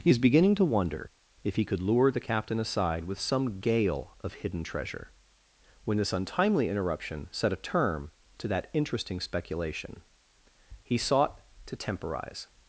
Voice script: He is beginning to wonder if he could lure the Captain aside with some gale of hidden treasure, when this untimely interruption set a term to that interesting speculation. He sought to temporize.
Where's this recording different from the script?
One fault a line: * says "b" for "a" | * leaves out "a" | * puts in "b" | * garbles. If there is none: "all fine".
all fine